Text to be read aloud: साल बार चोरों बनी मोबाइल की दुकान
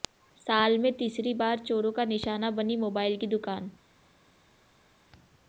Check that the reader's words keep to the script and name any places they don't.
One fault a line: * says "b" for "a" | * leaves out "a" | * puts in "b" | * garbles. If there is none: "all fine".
* puts in "में तीसरी"
* puts in "का निशाना"